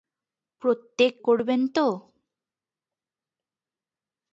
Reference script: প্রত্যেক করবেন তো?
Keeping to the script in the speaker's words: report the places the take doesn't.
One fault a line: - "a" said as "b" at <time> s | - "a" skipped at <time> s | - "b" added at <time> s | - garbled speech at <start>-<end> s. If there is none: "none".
none